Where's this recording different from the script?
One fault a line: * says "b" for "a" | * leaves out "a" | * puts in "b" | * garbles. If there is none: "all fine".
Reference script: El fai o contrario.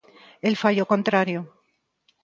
all fine